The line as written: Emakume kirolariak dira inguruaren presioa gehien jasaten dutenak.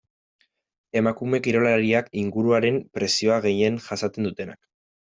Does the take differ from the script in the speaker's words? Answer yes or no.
yes